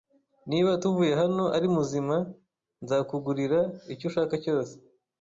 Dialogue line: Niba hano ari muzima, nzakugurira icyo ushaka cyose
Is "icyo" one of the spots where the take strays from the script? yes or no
no